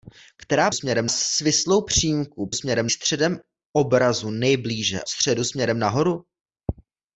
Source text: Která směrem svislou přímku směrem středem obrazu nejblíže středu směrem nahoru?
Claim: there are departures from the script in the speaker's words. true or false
false